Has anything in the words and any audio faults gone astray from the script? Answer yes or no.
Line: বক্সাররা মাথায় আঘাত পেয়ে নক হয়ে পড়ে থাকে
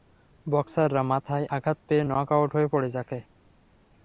yes